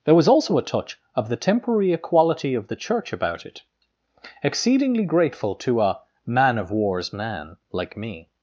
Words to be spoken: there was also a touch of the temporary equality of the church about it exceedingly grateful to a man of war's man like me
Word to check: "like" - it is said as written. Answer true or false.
true